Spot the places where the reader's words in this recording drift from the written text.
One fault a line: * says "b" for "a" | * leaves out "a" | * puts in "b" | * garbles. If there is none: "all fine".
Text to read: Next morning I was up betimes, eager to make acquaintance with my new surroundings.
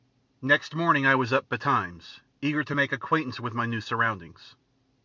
all fine